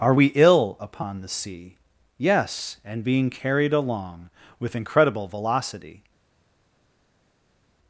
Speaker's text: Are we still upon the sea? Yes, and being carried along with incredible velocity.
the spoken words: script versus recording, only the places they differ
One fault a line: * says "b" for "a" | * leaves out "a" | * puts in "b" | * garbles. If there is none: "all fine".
* says "ill" for "still"